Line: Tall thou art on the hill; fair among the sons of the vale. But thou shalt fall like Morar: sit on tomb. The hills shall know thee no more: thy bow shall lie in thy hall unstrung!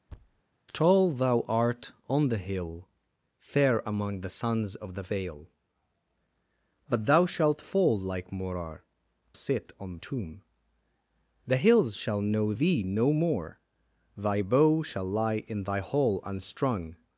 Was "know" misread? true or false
false